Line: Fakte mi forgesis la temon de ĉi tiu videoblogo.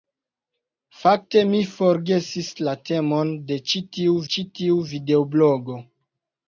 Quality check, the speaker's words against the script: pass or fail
fail